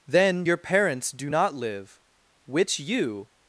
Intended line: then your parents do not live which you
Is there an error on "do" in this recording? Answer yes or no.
no